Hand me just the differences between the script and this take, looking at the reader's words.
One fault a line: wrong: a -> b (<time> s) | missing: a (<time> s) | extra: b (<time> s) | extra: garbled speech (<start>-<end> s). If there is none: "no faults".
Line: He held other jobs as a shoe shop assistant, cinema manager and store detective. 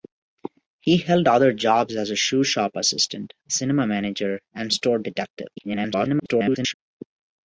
extra: garbled speech (5.6-6.7 s)